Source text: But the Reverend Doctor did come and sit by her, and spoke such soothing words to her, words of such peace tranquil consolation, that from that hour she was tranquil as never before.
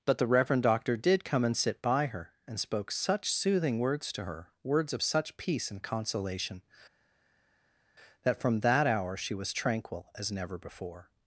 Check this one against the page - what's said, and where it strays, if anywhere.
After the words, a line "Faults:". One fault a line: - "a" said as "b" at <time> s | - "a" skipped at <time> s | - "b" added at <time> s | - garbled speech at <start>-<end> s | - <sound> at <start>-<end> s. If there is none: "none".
But the Reverend Doctor did come and sit by her, and spoke such soothing words to her, words of such peace and consolation, that from that hour she was tranquil as never before.
Faults:
- "tranquil" said as "and" at 5.7 s